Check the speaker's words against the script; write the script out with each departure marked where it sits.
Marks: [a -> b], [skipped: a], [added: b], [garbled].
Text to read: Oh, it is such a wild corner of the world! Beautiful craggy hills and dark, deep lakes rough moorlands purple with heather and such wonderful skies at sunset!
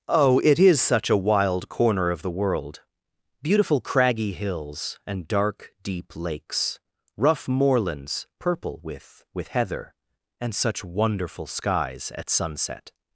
Oh, it is such a wild corner of the world! Beautiful craggy hills and dark, deep lakes rough moorlands purple with [added: with] heather and such wonderful skies at sunset!